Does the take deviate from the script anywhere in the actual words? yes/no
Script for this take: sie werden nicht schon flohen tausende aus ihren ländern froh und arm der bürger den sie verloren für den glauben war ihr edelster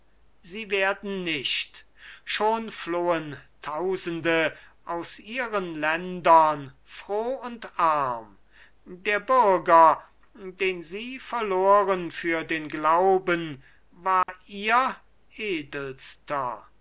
no